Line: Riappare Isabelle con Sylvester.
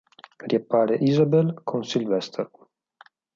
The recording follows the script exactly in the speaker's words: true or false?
true